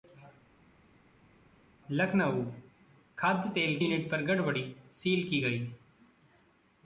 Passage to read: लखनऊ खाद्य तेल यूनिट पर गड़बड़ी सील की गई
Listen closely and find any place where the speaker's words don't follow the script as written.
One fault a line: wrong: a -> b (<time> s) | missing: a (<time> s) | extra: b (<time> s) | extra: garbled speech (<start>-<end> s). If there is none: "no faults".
no faults